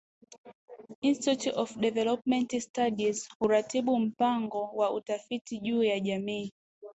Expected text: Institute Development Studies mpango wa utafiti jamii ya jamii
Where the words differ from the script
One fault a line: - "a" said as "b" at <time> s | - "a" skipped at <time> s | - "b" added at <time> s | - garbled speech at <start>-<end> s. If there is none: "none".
- "of" added at 1.6 s
- "huratibu" added at 3.4 s
- "jamii" said as "juu" at 5.6 s